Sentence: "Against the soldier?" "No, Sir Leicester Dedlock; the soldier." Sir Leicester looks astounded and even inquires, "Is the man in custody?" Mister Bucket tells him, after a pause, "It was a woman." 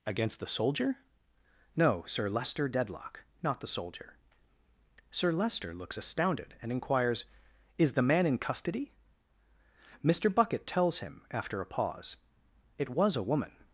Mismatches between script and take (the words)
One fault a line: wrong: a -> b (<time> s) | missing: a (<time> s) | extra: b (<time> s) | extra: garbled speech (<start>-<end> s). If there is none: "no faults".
extra: not (3.4 s)
missing: even (6.7 s)